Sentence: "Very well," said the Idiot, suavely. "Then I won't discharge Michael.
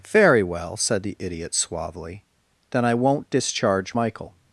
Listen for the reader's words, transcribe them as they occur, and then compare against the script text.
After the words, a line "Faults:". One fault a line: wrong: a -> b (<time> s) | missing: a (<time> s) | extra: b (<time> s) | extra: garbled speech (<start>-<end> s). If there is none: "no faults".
"Very well," said the Idiot, suavely. "Then I won't discharge Michael.
Faults:
no faults